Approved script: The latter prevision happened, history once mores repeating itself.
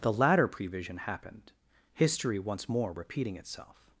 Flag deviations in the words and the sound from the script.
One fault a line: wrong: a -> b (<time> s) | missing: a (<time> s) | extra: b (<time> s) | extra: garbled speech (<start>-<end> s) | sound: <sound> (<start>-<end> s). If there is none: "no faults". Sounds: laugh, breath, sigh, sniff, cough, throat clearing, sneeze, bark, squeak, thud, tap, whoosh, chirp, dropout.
wrong: mores -> more (2.7 s)